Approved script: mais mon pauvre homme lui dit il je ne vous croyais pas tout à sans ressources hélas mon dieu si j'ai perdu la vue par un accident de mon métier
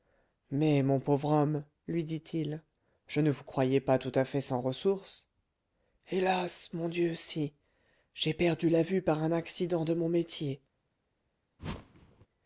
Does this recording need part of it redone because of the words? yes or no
yes